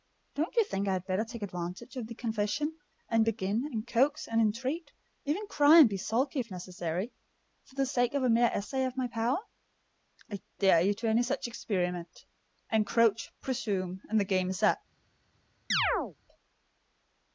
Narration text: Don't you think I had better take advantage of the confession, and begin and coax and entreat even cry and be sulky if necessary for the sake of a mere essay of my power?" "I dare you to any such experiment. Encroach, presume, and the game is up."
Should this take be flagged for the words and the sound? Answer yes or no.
yes